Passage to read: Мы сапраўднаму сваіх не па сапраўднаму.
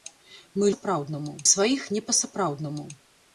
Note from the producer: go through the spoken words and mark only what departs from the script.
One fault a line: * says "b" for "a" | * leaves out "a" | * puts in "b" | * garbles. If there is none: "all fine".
all fine